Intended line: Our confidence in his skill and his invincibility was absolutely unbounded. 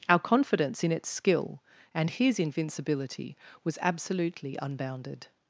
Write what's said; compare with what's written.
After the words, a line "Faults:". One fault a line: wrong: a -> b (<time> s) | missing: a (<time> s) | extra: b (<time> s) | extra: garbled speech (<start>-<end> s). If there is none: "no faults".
Our confidence in its skill and his invincibility was absolutely unbounded.
Faults:
wrong: his -> its (0.9 s)